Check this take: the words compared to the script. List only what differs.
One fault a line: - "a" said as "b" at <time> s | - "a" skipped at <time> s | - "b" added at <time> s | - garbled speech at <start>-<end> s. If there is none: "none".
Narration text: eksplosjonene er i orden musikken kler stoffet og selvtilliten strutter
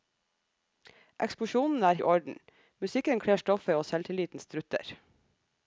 none